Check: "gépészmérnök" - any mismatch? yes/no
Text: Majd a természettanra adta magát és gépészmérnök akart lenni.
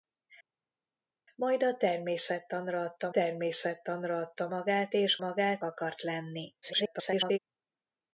yes